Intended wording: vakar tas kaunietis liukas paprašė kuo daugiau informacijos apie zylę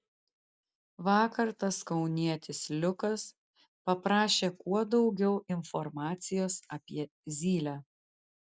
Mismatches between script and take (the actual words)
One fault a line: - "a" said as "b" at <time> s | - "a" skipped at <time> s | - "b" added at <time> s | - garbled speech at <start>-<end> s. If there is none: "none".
none